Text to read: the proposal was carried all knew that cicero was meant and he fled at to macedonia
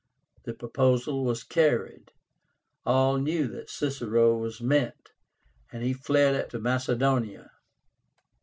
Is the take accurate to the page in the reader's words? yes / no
yes